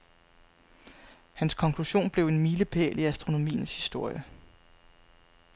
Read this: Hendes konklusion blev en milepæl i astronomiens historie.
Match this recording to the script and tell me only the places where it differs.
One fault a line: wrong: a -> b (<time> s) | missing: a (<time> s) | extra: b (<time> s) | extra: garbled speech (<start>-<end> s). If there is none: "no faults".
wrong: Hendes -> Hans (1.3 s)